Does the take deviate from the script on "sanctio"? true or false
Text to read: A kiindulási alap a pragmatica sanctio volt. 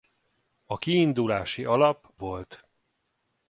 true